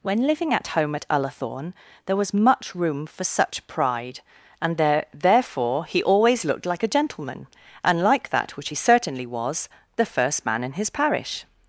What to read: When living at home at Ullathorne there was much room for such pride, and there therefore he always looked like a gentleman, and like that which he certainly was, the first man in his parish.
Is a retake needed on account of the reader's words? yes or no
no